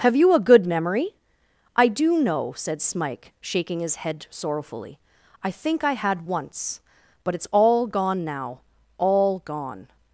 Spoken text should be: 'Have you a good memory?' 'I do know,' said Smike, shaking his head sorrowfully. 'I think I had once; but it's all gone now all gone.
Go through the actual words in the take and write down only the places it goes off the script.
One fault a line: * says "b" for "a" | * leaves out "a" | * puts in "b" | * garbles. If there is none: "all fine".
all fine